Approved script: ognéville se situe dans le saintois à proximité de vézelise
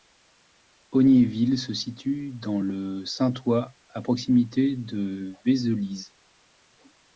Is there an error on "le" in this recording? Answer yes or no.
no